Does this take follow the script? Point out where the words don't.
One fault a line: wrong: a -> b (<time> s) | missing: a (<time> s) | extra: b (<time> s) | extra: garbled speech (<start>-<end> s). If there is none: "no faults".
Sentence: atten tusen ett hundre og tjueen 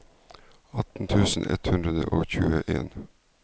no faults